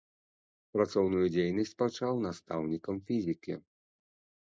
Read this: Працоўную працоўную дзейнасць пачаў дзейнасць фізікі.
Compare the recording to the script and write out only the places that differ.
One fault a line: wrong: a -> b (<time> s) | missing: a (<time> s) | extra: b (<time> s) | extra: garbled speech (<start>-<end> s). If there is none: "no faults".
missing: працоўную (1.2 s)
wrong: дзейнасць -> настаўнікам (2.3 s)